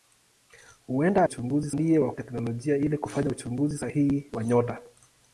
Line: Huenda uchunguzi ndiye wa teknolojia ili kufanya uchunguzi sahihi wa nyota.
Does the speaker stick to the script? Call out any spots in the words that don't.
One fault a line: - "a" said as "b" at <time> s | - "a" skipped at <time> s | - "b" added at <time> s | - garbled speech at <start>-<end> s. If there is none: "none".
none